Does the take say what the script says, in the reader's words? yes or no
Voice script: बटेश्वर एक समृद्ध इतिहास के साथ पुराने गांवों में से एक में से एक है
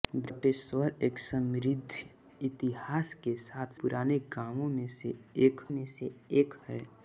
yes